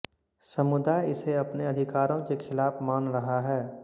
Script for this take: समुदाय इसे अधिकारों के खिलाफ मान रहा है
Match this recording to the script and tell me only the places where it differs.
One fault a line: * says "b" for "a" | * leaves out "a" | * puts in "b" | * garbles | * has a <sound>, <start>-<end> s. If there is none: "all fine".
* puts in "अपने"